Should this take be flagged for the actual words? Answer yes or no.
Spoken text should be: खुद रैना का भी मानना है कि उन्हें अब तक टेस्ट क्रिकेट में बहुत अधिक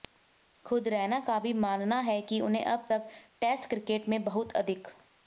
no